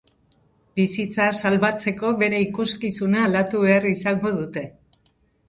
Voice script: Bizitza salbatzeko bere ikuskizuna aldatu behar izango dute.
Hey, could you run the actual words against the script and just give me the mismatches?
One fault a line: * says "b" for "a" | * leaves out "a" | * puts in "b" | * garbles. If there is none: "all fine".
all fine